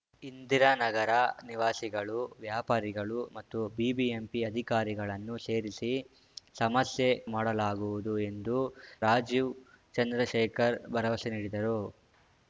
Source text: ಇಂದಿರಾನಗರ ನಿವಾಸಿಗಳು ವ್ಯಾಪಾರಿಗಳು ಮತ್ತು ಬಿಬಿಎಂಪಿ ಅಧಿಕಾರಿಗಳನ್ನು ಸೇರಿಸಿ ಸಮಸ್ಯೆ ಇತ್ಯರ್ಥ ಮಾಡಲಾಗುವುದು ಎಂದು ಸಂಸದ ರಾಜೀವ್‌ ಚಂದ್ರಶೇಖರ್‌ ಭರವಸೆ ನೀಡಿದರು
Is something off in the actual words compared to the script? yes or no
yes